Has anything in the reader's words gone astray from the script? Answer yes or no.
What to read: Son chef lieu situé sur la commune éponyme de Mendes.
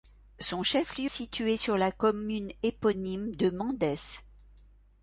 no